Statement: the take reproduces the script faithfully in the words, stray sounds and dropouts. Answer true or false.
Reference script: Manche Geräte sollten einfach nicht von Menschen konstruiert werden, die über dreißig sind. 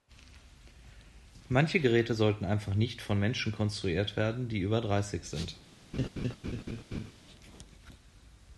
false